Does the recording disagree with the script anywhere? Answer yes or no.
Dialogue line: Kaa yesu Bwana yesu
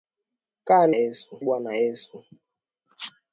no